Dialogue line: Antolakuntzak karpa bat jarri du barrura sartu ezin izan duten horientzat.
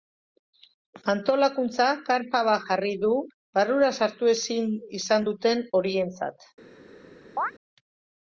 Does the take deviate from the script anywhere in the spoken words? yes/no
no